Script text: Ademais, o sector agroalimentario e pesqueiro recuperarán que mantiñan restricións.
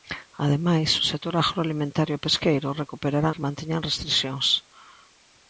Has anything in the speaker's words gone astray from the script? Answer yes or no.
no